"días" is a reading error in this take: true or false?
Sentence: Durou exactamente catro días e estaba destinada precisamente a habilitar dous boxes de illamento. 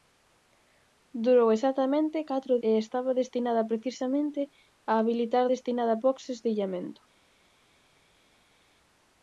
true